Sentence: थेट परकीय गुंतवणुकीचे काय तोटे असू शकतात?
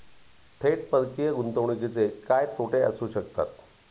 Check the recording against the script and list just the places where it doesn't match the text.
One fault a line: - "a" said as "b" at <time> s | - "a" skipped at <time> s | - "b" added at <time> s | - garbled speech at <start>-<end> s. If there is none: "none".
none